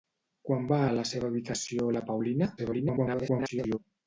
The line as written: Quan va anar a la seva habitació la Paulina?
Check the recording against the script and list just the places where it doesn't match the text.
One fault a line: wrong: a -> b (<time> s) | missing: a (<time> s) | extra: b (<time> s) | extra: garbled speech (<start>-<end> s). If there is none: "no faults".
missing: anar (0.8 s)
extra: garbled speech (2.6-3.8 s)